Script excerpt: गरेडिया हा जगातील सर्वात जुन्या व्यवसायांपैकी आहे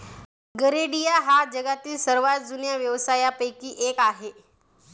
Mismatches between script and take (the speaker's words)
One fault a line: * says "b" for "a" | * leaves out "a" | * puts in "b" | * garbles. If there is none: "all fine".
* puts in "एक"